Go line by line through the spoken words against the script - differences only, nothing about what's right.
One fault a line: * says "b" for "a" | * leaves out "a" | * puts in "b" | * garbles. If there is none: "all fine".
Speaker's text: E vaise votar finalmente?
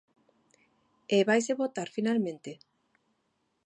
all fine